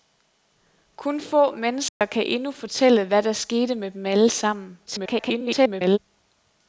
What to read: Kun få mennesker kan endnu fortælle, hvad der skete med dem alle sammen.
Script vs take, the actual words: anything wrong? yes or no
yes